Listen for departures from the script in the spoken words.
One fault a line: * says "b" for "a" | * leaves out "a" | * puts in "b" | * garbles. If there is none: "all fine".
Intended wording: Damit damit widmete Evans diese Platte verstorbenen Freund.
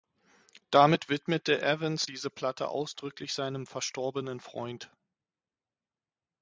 * leaves out "damit"
* puts in "ausdrücklich seinem"